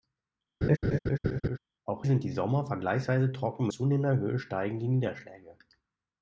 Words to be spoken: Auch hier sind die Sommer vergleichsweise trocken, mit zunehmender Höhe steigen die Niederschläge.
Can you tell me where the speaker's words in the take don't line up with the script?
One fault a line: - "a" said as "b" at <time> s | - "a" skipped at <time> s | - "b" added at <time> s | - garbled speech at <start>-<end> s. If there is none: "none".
- "hier" skipped at 2.0 s
- "mit" skipped at 3.7 s